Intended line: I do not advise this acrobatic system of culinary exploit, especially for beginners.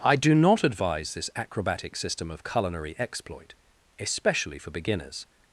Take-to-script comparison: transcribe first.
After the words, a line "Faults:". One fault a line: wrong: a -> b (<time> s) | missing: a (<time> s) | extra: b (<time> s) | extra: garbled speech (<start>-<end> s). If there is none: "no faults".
I do not advise this acrobatic system of culinary exploit, especially for beginners.
Faults:
no faults